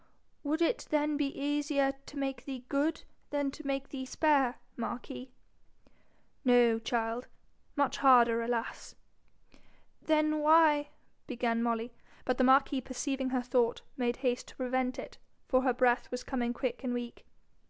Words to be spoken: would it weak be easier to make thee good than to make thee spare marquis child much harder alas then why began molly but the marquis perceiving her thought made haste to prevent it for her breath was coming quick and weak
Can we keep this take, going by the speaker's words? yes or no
no